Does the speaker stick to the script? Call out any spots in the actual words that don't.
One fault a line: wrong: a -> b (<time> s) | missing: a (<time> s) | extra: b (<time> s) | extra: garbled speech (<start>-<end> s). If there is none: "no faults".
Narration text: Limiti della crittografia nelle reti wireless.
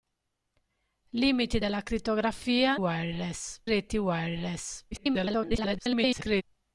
wrong: nelle -> wireless (2.7 s)
extra: garbled speech (4.9-6.4 s)